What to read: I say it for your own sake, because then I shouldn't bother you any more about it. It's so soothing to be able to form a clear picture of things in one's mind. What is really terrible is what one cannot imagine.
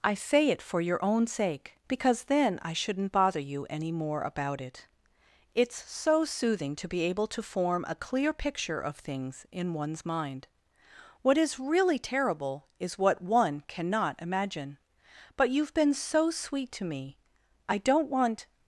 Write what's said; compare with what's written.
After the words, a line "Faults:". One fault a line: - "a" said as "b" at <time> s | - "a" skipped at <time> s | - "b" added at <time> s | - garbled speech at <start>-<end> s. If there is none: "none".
I say it for your own sake, because then I shouldn't bother you any more about it. It's so soothing to be able to form a clear picture of things in one's mind. What is really terrible is what one cannot imagine. But you've been so sweet to me; I don't want
Faults:
- "But you've been so sweet to me I don't want" added at 15.3 s